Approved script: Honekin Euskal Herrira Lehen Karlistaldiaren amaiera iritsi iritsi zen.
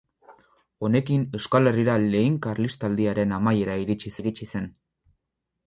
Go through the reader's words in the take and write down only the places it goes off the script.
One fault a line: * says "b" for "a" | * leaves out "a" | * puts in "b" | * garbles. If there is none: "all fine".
all fine